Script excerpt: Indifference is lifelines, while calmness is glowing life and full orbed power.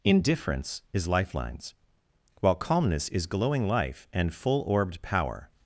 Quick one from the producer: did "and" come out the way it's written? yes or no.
yes